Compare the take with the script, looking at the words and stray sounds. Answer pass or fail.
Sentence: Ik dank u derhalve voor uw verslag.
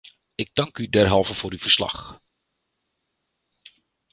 pass